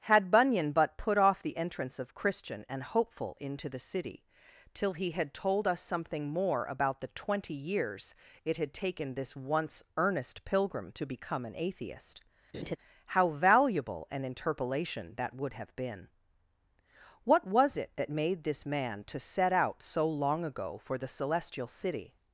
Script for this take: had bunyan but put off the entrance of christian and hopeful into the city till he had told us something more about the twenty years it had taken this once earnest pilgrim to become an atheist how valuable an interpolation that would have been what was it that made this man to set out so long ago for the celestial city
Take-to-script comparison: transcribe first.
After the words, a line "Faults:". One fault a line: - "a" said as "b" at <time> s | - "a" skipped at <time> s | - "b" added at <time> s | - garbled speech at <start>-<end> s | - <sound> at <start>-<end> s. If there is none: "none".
had bunyan but put off the entrance of christian and hopeful into the city till he had told us something more about the twenty years it had taken this once earnest pilgrim to become an atheist how valuable an interpolation that would have been what was it that made this man to set out so long ago for the celestial city
Faults:
- laugh at 12.5-12.8 s